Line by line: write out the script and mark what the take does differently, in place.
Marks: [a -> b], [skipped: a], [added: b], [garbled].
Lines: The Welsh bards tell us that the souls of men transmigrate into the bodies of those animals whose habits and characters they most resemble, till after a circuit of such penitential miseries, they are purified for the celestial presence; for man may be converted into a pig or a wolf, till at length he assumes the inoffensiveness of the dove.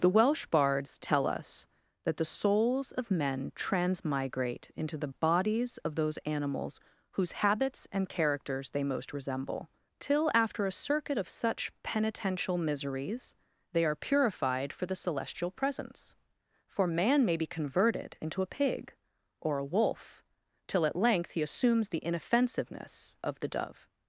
The Welsh bards tell us that the souls of men transmigrate into the bodies of those animals whose habits and characters they most resemble, till after a circuit of such penitential miseries, they are purified for the celestial presence; for man may be converted into a pig or a wolf, till at length he assumes the inoffensiveness of the dove.